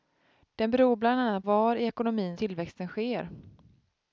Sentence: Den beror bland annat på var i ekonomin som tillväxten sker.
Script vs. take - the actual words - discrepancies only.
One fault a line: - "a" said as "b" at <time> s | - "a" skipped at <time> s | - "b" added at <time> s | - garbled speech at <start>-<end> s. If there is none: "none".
- "på" skipped at 1.4 s
- "som" skipped at 2.4 s